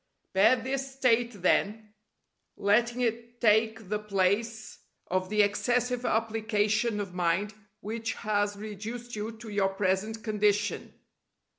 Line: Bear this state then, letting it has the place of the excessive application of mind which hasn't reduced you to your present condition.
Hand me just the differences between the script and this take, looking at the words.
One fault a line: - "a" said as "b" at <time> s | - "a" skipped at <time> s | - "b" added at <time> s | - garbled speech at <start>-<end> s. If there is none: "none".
- "has" said as "take" at 3.4 s
- "hasn't" said as "has" at 8.1 s